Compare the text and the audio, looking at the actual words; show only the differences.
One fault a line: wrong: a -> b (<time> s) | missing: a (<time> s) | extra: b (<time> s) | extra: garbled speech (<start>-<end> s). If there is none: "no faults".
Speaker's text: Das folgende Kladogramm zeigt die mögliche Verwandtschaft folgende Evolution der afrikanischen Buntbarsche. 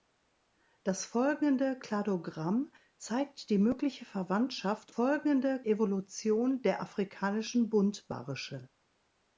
no faults